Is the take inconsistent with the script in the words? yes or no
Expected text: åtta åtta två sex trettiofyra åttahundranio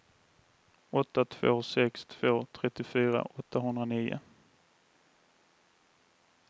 yes